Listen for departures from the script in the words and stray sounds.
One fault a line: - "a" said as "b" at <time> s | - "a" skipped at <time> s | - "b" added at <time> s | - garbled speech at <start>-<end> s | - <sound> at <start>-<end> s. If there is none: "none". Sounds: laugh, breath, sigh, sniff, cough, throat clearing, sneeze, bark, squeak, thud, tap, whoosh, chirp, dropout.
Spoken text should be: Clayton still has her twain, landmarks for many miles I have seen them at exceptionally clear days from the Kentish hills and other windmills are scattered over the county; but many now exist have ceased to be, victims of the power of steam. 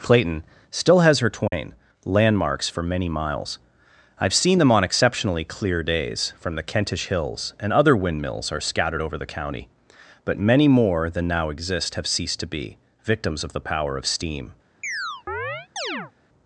- dropout at 1.5-1.5 s
- "at" said as "on" at 4.7 s
- "more than" added at 10.7 s
- chirp at 14.8-16.1 s